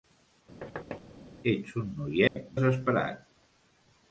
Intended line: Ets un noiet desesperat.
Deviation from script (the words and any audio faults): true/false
true